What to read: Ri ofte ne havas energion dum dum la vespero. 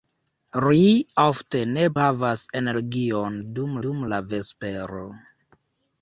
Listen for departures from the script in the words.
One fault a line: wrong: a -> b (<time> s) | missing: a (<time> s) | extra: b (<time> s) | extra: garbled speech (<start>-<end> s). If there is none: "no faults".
no faults